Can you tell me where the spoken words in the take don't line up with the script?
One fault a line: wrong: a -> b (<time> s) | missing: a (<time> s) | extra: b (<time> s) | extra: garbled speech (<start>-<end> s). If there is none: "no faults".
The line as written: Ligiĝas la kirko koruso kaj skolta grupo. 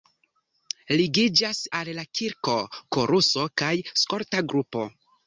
extra: al (1.8 s)